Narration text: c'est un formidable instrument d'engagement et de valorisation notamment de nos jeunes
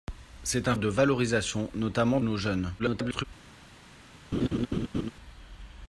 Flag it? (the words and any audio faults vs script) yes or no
yes